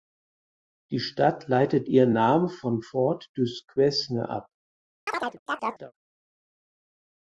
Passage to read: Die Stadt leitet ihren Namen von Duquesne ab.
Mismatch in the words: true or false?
true